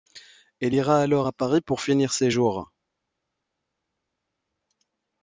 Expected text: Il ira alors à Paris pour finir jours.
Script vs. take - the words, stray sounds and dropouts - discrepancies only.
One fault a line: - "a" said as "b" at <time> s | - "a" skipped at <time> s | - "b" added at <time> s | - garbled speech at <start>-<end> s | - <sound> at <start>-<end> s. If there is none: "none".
- "Il" said as "Elle" at 0.6 s
- "ses" added at 2.1 s